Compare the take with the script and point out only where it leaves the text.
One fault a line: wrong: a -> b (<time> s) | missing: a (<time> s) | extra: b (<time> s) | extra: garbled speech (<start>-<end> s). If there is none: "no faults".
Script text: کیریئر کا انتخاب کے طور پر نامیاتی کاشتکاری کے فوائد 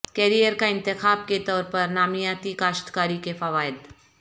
no faults